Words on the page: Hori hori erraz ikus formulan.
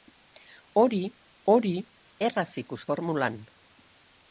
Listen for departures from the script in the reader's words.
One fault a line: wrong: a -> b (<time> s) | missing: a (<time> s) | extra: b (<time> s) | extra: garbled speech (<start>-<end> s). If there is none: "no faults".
no faults